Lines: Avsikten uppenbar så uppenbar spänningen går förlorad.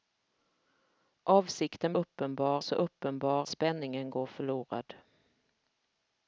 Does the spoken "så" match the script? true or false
true